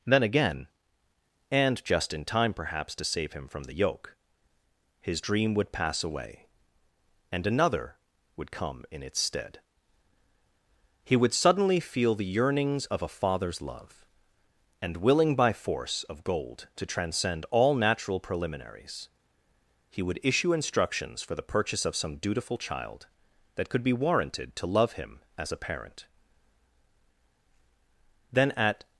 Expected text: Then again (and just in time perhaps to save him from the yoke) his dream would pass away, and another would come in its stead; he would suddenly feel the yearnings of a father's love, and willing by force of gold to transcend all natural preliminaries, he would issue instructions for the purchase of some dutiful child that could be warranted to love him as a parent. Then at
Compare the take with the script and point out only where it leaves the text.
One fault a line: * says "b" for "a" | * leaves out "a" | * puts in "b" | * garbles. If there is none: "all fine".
all fine